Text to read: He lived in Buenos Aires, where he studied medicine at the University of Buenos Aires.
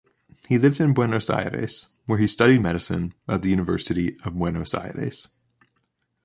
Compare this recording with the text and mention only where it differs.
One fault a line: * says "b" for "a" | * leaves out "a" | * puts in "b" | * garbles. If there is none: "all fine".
all fine